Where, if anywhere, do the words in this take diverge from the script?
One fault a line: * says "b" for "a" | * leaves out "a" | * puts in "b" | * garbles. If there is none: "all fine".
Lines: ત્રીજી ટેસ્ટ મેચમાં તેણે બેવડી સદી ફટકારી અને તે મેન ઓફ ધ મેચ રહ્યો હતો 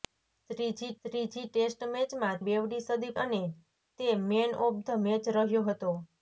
* puts in "ત્રીજી"
* leaves out "તેણે"
* leaves out "ફટકારી"